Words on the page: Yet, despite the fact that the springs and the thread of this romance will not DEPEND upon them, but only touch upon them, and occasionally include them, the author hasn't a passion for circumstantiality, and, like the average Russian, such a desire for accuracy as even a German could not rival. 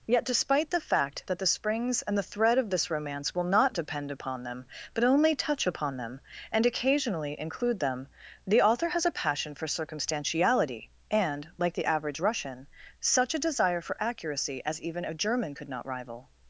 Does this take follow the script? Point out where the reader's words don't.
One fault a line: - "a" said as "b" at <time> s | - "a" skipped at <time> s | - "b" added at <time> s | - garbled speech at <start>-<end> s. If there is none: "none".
- "hasn't" said as "has" at 8.9 s